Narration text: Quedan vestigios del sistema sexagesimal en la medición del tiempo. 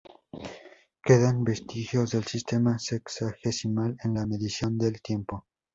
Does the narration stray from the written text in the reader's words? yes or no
no